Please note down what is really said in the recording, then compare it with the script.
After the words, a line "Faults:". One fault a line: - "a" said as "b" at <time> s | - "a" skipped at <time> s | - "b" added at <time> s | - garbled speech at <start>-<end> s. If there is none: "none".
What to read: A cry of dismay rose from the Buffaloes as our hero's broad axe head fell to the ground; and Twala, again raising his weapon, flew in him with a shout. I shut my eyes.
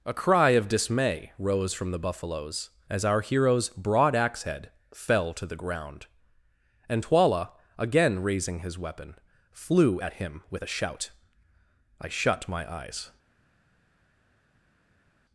A cry of dismay rose from the Buffaloes as our hero's broad axe head fell to the ground; and Twala, again raising his weapon, flew at him with a shout. I shut my eyes.
Faults:
- "in" said as "at" at 10.0 s